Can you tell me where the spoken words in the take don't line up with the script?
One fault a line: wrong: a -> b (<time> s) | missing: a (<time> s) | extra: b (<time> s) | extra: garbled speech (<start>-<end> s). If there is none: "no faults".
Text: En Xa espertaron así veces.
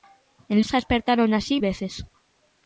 no faults